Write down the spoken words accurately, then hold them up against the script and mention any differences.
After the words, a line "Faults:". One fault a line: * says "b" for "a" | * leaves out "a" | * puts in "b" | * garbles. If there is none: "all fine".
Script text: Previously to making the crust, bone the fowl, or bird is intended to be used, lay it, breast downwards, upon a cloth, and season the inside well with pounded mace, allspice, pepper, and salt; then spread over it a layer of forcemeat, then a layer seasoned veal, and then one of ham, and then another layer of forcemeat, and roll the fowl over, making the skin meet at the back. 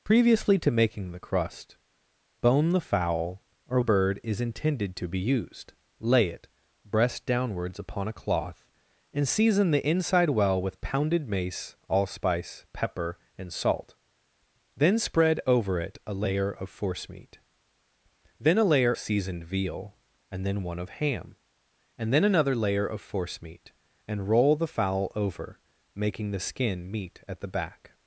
Previously to making the crust, bone the fowl, or bird is intended to be used, lay it, breast downwards, upon a cloth, and season the inside well with pounded mace, allspice, pepper, and salt; then spread over it a layer of forcemeat, then a layer seasoned veal, and then one of ham, and then another layer of forcemeat, and roll the fowl over, making the skin meet at the back.
Faults:
all fine